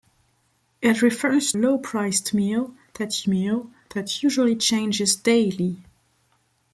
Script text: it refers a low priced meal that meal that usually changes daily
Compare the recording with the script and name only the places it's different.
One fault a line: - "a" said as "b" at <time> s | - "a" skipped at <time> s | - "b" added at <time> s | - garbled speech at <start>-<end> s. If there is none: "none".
none